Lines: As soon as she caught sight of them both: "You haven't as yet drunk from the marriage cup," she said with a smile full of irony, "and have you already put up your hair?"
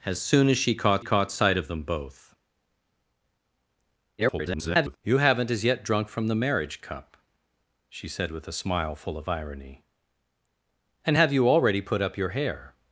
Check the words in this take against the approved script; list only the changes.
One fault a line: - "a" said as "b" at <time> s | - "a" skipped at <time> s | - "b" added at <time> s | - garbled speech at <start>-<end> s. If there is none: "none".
- "caught" added at 1.0 s
- garbled speech at 4.2-5.0 s